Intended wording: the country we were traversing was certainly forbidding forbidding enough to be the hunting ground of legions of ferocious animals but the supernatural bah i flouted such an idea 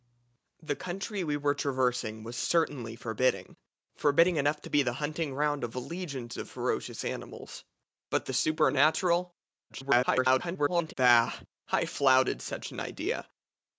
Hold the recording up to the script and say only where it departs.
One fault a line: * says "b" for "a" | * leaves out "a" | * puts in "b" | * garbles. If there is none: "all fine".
* garbles